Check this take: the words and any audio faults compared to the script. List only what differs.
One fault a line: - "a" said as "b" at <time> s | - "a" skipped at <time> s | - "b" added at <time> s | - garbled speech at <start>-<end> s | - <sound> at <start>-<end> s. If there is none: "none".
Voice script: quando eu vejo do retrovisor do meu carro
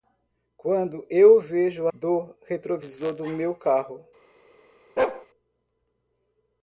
- bark at 5.0-5.3 s